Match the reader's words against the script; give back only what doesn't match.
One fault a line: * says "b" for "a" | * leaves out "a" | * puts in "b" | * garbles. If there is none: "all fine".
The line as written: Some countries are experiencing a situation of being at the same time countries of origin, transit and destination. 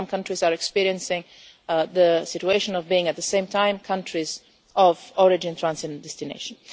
* says "the" for "a"